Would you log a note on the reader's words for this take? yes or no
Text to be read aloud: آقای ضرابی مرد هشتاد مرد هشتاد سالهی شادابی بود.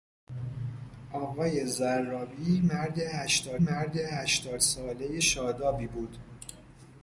no